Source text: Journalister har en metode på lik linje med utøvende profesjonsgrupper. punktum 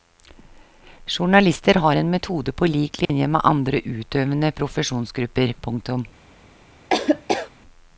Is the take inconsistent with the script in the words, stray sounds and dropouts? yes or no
yes